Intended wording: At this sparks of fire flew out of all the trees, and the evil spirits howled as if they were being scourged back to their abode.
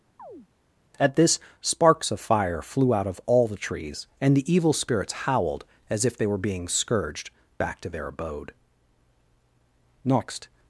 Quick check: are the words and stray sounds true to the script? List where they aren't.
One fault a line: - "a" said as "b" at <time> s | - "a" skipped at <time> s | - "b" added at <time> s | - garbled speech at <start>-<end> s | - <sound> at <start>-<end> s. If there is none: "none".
- chirp at 0.2-0.5 s
- "Next" added at 10.0 s